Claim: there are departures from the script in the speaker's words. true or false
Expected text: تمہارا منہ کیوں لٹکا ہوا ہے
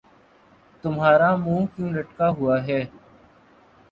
false